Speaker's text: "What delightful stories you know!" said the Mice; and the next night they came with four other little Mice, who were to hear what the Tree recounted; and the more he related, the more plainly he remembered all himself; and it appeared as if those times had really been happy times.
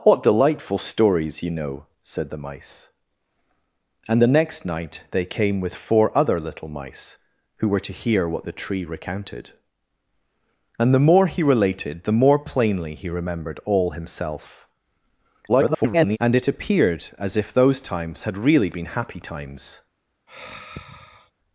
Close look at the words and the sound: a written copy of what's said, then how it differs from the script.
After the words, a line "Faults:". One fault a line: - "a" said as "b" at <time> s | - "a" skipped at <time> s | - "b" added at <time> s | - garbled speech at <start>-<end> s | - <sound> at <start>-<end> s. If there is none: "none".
"What delightful stories you know!" said the Mice; and the next night they came with four other little Mice, who were to hear what the Tree recounted; and the more he related, the more plainly he remembered all himself; [garbled] and it appeared as if those times had really been happy times.
Faults:
- garbled speech at 15.5-16.2 s
- sigh at 20.3-21.3 s